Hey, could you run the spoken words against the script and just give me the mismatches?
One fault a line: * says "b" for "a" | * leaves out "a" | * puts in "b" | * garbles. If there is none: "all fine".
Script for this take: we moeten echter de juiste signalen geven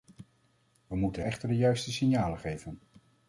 all fine